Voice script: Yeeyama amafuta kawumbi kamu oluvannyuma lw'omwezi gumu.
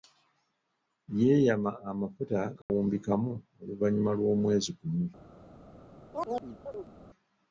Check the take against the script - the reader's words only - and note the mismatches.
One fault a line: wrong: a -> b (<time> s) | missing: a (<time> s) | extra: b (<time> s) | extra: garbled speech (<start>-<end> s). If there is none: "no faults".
no faults